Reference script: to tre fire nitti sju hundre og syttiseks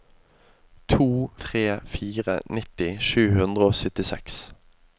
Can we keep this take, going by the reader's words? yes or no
yes